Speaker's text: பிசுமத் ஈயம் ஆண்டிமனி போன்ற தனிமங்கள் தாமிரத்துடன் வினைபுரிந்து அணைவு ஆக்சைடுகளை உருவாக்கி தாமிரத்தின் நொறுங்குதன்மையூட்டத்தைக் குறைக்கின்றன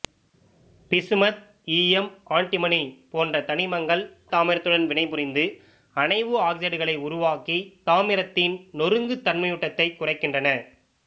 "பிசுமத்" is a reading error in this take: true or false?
false